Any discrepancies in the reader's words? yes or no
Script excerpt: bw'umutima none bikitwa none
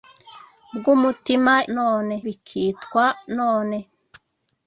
no